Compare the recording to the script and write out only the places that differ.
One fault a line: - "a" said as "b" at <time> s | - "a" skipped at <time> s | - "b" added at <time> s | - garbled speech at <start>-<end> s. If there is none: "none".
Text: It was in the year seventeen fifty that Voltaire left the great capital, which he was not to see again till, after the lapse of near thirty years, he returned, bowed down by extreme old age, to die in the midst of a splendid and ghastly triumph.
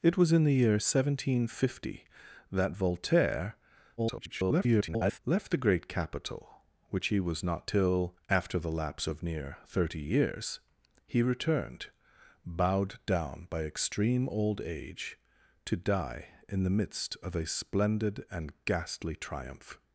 - garbled speech at 4.0-5.2 s
- "to see again" skipped at 7.7 s